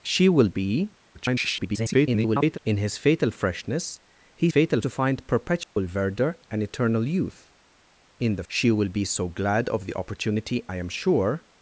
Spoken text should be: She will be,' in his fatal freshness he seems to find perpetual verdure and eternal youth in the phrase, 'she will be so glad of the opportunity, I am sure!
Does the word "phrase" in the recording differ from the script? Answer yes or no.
yes